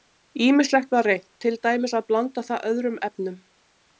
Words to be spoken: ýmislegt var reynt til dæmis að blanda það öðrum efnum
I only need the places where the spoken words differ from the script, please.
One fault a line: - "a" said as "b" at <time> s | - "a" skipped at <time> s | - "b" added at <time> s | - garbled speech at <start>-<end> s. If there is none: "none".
none